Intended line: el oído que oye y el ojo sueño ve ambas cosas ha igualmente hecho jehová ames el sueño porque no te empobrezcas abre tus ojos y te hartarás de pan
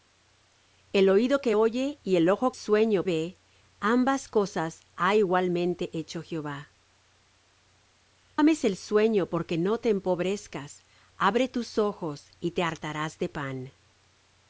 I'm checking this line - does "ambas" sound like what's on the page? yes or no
yes